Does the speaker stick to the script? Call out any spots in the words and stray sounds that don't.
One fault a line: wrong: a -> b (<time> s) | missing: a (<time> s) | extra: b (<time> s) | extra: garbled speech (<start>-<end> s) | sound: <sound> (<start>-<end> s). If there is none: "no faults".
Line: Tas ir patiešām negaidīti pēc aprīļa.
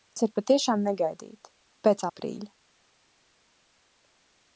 no faults